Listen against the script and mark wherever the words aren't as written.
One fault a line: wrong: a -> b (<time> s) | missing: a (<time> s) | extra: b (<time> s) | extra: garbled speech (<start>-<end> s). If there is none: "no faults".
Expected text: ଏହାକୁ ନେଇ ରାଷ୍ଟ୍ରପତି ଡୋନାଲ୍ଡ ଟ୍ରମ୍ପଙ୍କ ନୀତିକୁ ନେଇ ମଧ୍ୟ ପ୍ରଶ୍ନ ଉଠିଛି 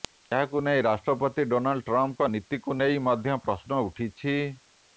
no faults